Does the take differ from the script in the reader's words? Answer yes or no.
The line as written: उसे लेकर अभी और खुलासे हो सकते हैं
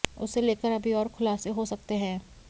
no